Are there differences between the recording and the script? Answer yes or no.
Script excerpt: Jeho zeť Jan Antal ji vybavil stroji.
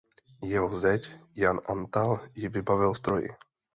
no